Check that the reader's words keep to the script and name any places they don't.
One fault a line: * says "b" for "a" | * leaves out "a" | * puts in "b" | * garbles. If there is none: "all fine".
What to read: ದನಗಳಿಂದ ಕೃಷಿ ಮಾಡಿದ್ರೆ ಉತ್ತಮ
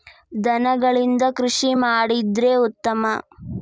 all fine